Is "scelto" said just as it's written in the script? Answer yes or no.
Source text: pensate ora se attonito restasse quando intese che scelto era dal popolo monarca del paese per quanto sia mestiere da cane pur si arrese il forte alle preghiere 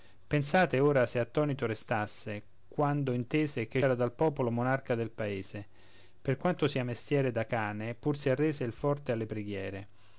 no